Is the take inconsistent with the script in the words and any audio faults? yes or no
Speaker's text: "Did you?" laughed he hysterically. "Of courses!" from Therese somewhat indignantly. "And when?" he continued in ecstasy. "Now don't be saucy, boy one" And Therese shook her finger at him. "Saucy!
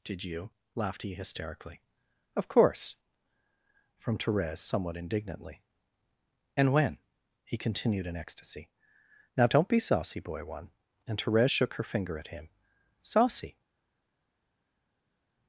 yes